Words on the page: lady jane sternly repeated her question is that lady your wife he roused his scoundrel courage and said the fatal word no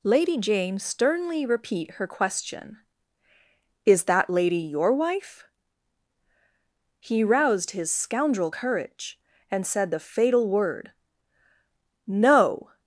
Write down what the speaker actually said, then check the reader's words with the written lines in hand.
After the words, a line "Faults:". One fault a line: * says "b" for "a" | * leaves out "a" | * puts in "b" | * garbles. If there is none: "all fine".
lady jane sternly repeat her question is that lady your wife he roused his scoundrel courage and said the fatal word no
Faults:
* says "repeat" for "repeated"